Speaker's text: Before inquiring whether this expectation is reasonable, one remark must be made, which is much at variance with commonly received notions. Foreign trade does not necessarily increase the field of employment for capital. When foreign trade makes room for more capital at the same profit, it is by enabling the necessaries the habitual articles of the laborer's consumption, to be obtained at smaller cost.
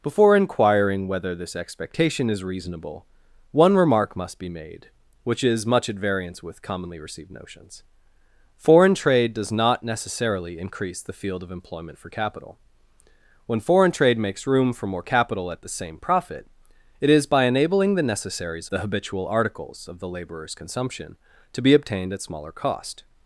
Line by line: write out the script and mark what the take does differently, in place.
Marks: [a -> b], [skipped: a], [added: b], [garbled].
Before inquiring whether this expectation is reasonable, one remark must be made, which is much at variance with commonly received notions. Foreign trade does not necessarily increase the field of employment for capital. When foreign trade makes room for more capital at the same profit, it is by enabling the necessaries the habitual articles of the laborer's consumption, to be obtained at smaller cost.